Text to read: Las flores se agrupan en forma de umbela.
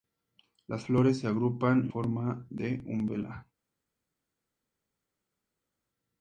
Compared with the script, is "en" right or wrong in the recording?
wrong